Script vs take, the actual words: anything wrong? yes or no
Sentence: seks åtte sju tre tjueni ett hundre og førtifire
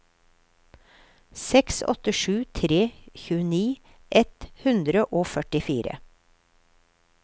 no